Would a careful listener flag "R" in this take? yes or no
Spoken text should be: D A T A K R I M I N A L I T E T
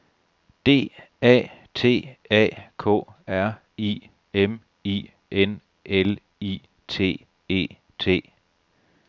no